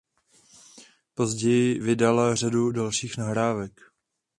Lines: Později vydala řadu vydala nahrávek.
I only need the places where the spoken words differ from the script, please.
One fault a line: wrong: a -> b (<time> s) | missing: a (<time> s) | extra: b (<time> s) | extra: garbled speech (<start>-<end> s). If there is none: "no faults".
wrong: vydala -> dalších (2.7 s)